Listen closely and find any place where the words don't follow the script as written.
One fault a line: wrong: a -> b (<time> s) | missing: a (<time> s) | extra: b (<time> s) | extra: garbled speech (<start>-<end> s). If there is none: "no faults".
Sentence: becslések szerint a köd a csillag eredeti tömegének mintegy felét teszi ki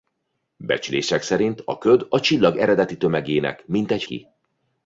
missing: felét teszi (4.0 s)